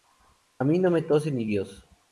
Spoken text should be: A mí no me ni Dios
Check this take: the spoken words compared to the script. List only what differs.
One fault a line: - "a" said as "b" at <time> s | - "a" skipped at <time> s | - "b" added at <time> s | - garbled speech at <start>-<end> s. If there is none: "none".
- "tose" added at 1.0 s